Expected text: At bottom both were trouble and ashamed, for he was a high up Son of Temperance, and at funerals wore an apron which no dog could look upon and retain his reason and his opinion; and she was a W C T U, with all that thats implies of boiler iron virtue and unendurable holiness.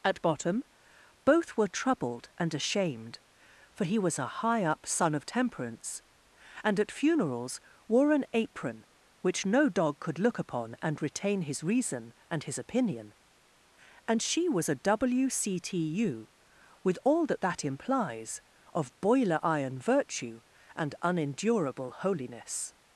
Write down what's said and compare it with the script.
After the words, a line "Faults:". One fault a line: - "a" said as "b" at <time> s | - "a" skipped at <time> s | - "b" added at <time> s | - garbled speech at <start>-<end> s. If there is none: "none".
At bottom both were troubled and ashamed, for he was a high up Son of Temperance, and at funerals wore an apron which no dog could look upon and retain his reason and his opinion; and she was a W C T U, with all that that implies of boiler iron virtue and unendurable holiness.
Faults:
- "trouble" said as "troubled" at 1.7 s
- "thats" said as "that" at 17.4 s